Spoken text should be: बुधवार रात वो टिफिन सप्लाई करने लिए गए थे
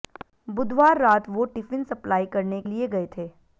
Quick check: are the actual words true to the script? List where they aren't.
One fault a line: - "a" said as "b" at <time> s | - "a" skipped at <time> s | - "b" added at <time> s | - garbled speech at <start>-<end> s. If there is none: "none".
none